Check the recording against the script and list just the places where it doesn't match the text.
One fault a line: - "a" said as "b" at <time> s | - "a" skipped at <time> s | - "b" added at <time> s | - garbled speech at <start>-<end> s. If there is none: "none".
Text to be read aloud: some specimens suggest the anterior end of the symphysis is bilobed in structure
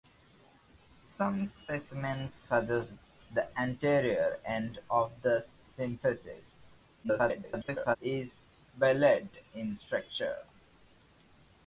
- garbled speech at 7.0-8.0 s